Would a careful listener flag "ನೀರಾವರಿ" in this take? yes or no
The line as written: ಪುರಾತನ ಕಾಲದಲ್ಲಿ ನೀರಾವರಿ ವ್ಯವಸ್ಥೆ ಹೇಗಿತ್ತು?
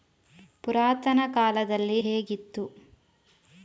yes